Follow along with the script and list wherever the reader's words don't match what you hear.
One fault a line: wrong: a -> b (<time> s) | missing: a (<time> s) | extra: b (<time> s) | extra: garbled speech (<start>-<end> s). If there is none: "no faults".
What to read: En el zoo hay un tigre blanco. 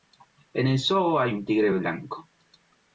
no faults